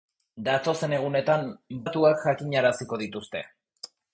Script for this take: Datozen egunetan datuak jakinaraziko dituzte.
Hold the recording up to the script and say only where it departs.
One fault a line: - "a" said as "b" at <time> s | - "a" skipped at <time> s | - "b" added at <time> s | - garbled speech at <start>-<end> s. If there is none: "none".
none